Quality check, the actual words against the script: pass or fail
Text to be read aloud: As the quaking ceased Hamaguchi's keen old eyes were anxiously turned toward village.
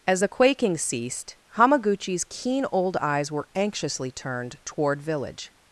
pass